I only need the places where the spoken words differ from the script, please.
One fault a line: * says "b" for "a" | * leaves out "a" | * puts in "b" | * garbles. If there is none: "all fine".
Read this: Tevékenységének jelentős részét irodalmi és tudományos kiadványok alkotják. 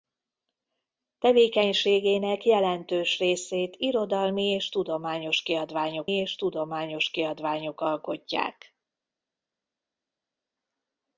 * puts in "és tudományos kiadványok"